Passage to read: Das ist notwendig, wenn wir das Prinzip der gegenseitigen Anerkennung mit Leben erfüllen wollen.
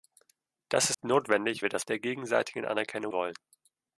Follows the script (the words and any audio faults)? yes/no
no